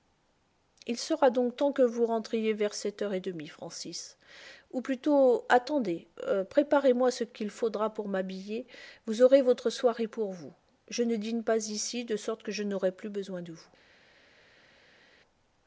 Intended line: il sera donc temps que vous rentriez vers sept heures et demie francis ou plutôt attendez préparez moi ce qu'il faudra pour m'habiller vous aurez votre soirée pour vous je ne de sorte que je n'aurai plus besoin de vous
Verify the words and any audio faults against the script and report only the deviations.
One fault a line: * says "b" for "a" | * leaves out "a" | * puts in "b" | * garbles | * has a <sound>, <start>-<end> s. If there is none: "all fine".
* puts in "dîne pas ici"